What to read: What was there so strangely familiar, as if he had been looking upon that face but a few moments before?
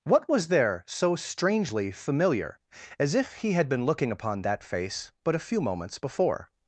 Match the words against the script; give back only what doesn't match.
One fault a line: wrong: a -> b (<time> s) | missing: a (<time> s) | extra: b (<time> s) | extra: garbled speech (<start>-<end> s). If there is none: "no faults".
no faults